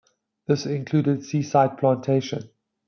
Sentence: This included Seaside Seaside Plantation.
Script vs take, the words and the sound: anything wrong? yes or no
yes